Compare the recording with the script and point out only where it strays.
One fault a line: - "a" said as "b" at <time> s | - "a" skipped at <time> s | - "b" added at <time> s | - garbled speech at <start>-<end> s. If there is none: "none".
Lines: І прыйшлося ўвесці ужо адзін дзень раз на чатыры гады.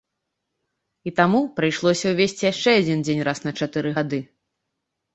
- "таму" added at 1.2 s
- "ужо" said as "яшчэ" at 2.5 s